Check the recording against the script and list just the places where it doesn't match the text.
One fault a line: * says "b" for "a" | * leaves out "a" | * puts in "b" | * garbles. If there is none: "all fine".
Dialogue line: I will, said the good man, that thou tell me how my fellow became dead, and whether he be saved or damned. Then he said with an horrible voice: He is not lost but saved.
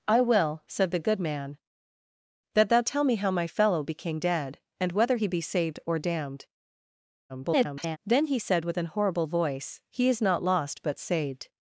* garbles